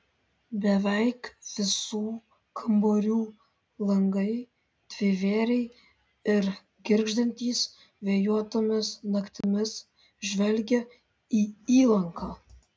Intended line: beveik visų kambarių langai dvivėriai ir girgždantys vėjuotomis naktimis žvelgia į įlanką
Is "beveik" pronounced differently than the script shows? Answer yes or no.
no